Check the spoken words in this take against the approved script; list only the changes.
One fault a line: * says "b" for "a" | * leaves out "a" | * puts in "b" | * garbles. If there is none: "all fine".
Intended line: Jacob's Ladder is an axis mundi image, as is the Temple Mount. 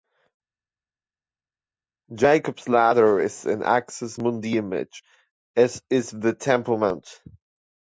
all fine